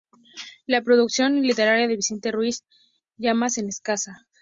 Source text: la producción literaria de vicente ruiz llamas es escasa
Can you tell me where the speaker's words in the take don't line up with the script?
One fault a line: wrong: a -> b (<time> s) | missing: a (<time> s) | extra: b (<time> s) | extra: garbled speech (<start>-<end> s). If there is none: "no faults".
no faults